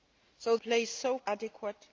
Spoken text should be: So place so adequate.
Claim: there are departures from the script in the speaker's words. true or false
false